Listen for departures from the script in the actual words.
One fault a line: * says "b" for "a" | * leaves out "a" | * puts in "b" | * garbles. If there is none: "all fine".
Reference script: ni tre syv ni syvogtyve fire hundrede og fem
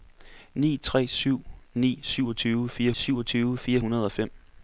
* puts in "syvogtyve fire"